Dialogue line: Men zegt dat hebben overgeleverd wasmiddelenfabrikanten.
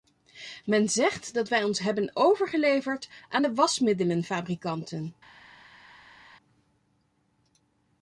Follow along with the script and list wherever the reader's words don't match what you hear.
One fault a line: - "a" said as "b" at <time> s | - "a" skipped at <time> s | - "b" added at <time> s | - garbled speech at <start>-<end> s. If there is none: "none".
- "wij ons" added at 1.5 s
- "aan de" added at 3.3 s